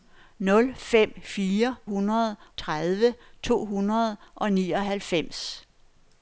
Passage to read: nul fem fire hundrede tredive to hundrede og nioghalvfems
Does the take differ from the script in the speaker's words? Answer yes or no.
no